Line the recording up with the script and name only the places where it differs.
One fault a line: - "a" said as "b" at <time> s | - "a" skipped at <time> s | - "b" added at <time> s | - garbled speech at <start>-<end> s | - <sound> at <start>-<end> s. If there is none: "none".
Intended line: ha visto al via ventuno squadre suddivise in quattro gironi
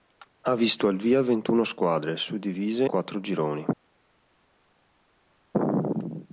- "in" skipped at 2.8 s